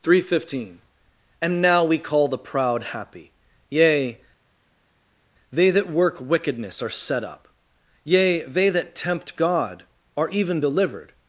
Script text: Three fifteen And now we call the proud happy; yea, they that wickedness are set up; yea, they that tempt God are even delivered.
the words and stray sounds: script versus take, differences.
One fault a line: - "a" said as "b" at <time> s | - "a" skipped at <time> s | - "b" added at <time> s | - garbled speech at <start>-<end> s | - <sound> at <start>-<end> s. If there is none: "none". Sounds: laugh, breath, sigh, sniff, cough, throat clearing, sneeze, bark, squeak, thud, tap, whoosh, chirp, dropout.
- "work" added at 5.9 s